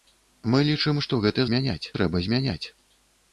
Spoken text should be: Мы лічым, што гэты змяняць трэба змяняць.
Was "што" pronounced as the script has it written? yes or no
yes